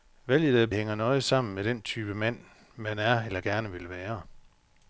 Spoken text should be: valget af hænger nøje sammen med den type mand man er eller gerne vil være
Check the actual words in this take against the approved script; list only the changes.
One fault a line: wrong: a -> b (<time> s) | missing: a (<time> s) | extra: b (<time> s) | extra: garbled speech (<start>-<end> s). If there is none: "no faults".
no faults